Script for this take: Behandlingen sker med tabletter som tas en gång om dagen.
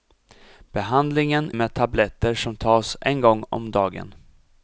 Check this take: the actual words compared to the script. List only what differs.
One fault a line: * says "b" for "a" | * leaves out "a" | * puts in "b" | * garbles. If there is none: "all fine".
* leaves out "sker"